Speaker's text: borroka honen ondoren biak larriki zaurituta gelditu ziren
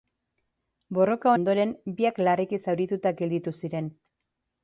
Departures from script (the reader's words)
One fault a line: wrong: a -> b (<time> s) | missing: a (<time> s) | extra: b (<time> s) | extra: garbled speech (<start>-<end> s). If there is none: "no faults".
missing: honen (1.3 s)